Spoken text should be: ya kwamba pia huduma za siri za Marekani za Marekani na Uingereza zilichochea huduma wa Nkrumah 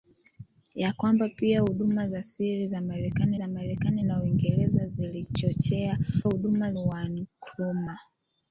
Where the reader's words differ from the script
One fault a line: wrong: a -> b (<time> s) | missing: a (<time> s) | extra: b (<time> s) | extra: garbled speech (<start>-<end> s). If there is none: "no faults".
no faults